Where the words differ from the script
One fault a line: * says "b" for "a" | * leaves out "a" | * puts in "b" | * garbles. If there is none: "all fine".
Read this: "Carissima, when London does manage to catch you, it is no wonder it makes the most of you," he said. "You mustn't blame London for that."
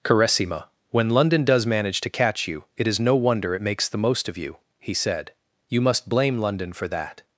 * says "must" for "mustn't"